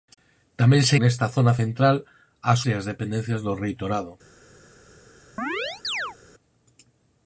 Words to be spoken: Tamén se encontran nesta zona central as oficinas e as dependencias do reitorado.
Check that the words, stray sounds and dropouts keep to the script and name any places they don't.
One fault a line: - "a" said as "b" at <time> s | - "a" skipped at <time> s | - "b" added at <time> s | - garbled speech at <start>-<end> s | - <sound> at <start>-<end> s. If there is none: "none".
- "encontran" skipped at 0.9 s
- "oficinas" skipped at 2.6 s
- chirp at 5.4-6.2 s